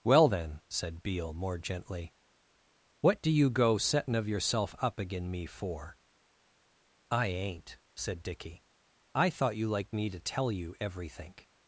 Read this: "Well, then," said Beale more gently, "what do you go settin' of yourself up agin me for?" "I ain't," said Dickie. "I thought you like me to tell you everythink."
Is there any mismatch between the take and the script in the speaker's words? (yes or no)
yes